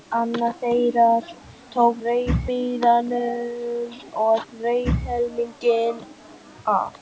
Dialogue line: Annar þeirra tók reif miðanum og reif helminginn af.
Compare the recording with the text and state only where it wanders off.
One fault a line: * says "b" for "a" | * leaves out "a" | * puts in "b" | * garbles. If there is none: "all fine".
all fine